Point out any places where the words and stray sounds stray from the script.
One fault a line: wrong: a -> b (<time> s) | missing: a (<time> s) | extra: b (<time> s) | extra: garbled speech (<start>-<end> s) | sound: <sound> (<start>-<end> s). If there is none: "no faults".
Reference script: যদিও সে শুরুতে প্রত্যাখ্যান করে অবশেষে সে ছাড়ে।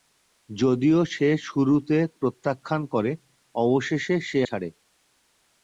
no faults